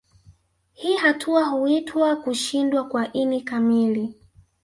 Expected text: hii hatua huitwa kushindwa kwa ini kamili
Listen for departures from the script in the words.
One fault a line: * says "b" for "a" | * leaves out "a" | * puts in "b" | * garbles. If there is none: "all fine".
all fine